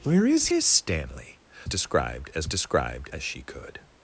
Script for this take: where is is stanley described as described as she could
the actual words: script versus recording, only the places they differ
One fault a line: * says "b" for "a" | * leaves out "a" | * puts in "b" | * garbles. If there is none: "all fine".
all fine